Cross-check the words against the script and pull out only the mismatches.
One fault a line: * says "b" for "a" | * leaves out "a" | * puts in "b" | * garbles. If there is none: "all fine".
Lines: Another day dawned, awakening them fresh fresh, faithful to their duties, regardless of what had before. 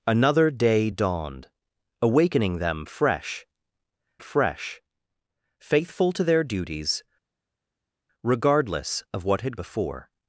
all fine